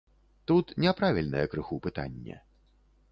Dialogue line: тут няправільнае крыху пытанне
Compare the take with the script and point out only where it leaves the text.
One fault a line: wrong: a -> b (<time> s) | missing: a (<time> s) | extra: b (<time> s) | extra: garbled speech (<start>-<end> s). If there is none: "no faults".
no faults